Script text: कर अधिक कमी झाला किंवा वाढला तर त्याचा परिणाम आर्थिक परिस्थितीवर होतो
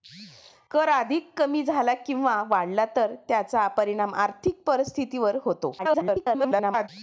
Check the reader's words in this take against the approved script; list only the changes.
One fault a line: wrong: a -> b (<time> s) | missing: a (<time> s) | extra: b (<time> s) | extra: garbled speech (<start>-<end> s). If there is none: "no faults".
extra: garbled speech (5.8-6.9 s)